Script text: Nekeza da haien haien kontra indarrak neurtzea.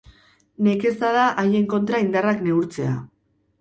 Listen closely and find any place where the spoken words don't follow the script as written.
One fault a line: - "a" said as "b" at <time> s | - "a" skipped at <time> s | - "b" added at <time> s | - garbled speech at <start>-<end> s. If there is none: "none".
- "haien" skipped at 1.7 s